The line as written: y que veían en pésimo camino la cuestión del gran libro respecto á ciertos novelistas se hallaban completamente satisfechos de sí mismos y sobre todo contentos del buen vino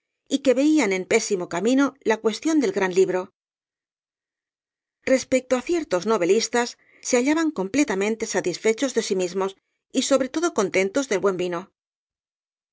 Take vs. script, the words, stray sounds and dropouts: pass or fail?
pass